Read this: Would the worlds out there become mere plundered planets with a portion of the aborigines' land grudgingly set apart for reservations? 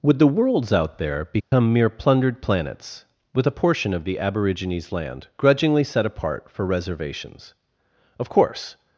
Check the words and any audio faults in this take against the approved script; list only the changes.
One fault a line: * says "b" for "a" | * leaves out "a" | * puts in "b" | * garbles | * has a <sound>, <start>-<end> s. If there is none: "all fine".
* has a dropout, 1.4-1.5 s
* puts in "Of course"